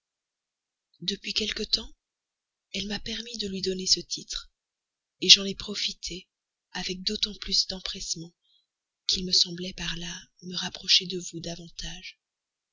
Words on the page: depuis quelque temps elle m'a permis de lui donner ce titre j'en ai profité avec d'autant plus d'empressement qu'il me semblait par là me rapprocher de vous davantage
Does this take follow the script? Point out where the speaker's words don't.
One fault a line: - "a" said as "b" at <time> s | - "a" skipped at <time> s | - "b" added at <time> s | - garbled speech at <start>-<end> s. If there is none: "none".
none